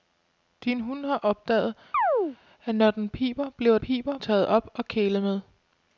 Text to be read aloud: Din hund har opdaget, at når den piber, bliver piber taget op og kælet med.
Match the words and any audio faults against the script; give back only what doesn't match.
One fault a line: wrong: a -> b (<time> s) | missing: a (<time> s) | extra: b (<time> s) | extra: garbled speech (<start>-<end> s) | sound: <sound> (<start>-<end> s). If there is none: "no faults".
sound: chirp (1.9-2.4 s)